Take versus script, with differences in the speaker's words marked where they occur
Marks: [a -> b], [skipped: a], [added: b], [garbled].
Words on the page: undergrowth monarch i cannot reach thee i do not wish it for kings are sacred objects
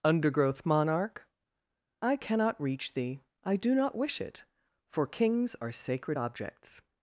undergrowth monarch i cannot reach thee i do not wish it for kings are sacred objects